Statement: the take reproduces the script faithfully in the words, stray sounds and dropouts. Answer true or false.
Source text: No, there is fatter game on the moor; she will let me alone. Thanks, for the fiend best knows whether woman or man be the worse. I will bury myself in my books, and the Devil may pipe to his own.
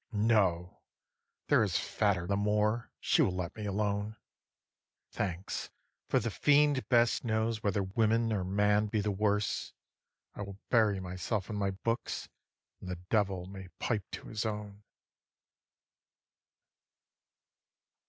false